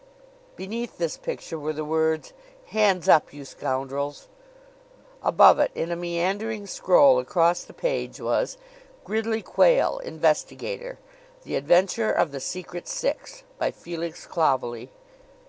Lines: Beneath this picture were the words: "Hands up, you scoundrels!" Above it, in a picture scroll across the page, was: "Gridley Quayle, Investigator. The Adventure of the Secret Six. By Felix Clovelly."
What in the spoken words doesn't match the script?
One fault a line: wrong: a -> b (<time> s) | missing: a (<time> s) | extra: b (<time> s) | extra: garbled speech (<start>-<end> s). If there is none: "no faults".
wrong: picture -> meandering (6.0 s)